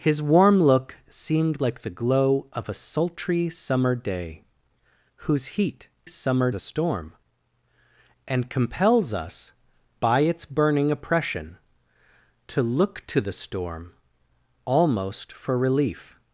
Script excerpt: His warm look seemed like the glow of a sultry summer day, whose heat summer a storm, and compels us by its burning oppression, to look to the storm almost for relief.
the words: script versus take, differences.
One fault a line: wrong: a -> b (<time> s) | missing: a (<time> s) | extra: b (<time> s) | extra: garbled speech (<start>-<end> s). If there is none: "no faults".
no faults